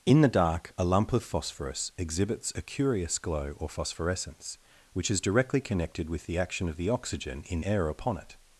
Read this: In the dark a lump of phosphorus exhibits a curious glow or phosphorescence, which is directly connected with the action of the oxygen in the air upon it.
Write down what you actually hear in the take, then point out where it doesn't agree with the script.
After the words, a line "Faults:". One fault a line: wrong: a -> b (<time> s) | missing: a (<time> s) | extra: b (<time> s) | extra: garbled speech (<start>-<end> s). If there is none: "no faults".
In the dark a lump of phosphorus exhibits a curious glow or phosphorescence, which is directly connected with the action of the oxygen in air upon it.
Faults:
missing: the (7.6 s)